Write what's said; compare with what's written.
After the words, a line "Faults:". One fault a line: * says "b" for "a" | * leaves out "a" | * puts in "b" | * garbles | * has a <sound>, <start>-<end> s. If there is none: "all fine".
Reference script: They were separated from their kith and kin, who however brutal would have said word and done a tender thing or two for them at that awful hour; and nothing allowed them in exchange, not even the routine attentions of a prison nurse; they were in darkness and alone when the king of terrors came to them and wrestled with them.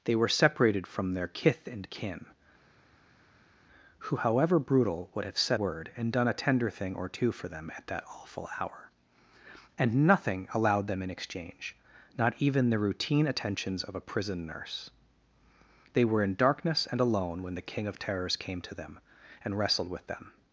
They were separated from their kith and kin, who however brutal would have said word and done a tender thing or two for them at that awful hour; and nothing allowed them in exchange, not even the routine attentions of a prison nurse; they were in darkness and alone when the king of terrors came to them and wrestled with them.
Faults:
all fine